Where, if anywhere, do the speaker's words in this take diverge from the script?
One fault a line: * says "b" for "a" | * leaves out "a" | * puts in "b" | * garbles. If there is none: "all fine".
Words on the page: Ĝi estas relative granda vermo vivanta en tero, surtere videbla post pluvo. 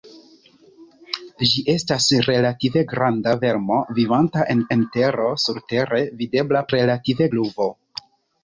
* puts in "en"
* says "relative" for "post"